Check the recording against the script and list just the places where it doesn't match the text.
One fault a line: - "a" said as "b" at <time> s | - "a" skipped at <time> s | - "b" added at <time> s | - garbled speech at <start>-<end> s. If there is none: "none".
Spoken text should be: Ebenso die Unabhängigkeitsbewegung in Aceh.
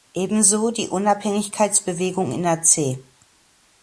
none